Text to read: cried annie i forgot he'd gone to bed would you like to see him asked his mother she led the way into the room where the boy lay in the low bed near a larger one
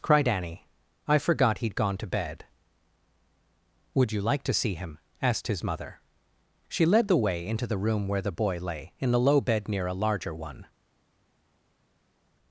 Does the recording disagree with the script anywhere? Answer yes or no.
no